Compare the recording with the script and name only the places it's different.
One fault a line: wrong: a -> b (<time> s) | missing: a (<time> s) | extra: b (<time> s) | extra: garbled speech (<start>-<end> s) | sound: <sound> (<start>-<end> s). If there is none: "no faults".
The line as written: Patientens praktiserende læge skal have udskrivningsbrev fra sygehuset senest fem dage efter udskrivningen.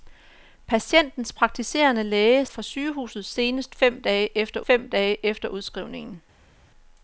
wrong: skal have udskrivningsbrev fra sygehuset senest -> fra sygehuset senest fem dage efter (2.5 s)